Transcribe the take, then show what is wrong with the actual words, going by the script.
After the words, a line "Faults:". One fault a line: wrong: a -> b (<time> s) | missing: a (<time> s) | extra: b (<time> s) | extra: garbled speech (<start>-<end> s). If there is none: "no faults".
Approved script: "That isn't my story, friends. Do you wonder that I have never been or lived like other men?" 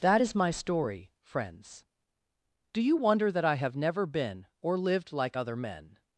"That is my story, friends. Do you wonder that I have never been or lived like other men?"
Faults:
wrong: isn't -> is (0.2 s)